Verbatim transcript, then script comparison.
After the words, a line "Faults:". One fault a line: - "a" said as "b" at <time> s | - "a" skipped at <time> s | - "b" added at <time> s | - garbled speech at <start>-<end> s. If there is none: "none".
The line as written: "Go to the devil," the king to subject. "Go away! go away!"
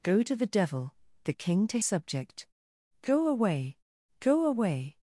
"Go to the devil," the king to subject. "Go away! go away!"
Faults:
none